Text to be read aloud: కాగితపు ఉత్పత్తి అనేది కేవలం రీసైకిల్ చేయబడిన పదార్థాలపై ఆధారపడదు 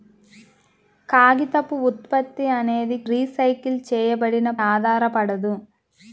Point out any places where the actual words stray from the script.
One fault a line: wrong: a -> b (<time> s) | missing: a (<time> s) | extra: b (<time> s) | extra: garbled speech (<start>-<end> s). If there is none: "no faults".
missing: కేవలం (3.0 s)
missing: పదార్థాలపై (4.5 s)